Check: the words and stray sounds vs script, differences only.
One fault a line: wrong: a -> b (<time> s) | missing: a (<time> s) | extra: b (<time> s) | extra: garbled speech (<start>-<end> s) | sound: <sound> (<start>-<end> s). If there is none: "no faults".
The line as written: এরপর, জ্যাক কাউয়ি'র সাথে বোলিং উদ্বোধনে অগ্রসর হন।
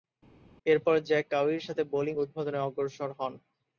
no faults